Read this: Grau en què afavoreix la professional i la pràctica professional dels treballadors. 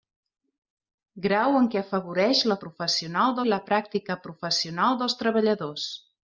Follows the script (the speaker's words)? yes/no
yes